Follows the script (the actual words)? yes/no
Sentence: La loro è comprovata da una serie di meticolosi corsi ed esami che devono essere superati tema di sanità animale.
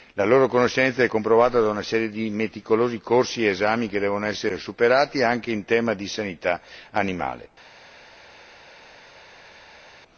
no